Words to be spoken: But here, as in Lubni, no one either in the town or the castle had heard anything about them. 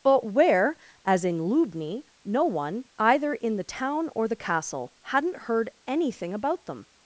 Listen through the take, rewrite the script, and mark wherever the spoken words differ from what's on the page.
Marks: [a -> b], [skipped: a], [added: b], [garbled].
But [here, -> where] as in Lubni, no one either in the town or the castle [had -> hadn't] heard anything about them.